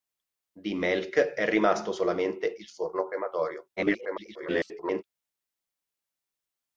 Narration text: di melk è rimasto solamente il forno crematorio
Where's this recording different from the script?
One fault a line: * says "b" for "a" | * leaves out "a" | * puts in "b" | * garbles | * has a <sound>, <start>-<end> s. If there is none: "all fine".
* garbles